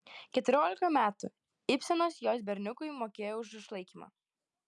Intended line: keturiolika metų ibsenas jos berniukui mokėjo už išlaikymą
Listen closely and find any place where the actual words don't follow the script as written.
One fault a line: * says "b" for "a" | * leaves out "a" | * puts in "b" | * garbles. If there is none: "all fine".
all fine